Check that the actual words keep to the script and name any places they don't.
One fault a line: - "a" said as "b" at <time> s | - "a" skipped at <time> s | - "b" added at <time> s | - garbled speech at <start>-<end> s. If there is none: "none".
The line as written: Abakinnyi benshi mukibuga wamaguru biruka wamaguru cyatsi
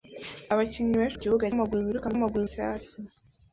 none